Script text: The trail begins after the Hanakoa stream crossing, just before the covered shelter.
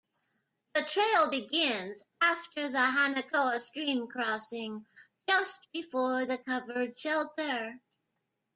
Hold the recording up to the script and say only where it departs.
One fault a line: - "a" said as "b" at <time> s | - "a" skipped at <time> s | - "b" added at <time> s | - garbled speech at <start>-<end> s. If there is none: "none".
none